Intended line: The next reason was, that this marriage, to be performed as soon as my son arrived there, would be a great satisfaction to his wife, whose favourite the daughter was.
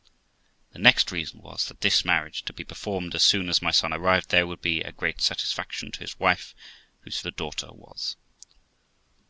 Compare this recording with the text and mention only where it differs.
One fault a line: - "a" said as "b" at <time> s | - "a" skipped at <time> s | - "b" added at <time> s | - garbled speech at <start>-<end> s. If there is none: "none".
- "favourite" skipped at 7.2 s